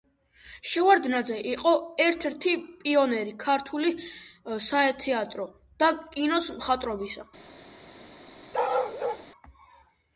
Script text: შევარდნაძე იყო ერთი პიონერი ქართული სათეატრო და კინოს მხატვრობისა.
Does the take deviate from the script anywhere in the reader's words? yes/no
yes